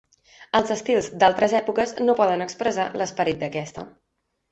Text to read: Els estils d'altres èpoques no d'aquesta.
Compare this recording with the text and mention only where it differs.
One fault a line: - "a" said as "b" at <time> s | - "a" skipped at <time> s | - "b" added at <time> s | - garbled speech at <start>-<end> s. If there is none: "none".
- "poden expressar l'esperit" added at 2.2 s